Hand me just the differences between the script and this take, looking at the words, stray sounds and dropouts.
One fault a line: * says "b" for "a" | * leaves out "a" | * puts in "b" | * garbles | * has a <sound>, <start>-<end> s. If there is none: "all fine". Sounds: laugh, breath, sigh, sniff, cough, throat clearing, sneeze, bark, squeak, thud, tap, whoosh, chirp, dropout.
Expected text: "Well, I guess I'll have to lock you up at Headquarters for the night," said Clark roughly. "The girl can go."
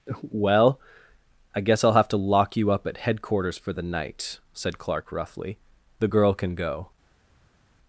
all fine